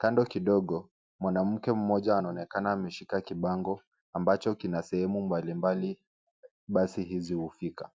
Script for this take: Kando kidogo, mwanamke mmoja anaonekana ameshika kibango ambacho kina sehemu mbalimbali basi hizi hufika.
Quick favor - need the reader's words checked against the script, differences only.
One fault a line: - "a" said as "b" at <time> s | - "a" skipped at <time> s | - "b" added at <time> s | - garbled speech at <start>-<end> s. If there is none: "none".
none